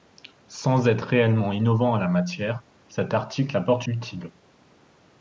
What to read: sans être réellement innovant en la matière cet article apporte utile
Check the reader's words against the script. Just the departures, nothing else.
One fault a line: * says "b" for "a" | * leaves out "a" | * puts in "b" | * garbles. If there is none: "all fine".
all fine